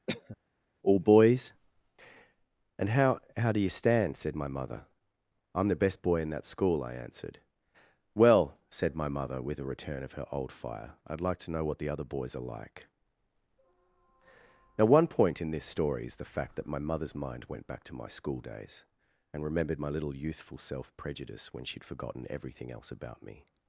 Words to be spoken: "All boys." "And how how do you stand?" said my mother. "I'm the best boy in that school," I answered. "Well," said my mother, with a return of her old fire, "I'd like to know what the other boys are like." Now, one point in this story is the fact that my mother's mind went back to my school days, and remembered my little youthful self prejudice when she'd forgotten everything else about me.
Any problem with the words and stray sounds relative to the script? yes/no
yes